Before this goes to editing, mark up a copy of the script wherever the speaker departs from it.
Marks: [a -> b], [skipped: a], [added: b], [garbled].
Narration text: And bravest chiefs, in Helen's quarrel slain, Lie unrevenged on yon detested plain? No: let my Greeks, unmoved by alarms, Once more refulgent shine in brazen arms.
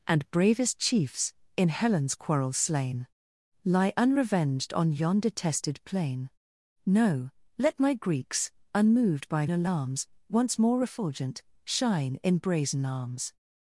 And bravest chiefs, in Helen's quarrel slain, Lie unrevenged on yon detested plain? No: let my Greeks, unmoved by alarms, Once more refulgent shine in brazen arms.